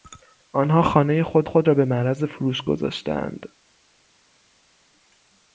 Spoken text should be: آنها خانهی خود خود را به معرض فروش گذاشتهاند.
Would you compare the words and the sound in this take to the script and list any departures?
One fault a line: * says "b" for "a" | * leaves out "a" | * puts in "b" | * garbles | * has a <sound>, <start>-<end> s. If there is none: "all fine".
all fine